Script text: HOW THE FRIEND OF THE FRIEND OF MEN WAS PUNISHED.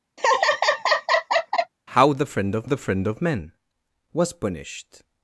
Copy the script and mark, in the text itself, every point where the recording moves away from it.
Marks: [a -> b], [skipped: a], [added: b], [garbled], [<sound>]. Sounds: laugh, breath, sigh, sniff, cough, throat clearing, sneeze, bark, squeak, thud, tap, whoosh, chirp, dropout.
[laugh] HOW THE FRIEND OF THE FRIEND OF MEN WAS PUNISHED.